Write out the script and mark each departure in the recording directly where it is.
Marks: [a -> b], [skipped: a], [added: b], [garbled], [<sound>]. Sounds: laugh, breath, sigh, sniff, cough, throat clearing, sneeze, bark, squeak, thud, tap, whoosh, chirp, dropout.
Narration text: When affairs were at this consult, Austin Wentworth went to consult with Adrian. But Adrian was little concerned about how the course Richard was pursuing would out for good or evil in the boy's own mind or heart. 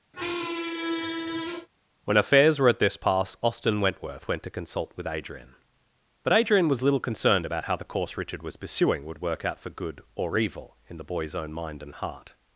[squeak] When affairs were at this [consult, -> pass] Austin Wentworth went to consult with Adrian. But Adrian was little concerned about how the course Richard was pursuing would [added: work] out for good or evil in the boy's own mind [or -> and] heart.